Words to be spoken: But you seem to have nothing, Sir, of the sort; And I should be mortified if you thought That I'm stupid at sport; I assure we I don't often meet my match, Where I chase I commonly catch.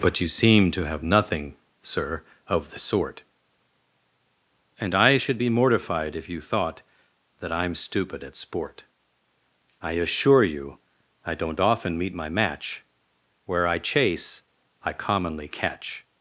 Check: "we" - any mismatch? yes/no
yes